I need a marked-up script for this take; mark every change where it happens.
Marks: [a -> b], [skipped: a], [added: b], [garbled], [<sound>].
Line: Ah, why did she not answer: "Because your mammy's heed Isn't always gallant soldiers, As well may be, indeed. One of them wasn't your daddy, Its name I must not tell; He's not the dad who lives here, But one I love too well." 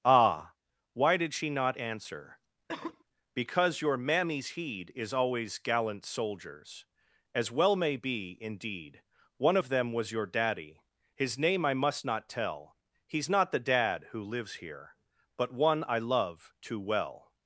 Ah, why did she not answer: [cough] "Because your mammy's heed [Isn't -> Is] always gallant soldiers, As well may be, indeed. One of them [wasn't -> was] your daddy, [Its -> His] name I must not tell; He's not the dad who lives here, But one I love too well."